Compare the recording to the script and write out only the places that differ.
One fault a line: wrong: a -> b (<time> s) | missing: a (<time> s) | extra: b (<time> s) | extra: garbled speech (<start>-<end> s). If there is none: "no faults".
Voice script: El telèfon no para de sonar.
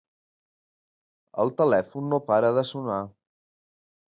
no faults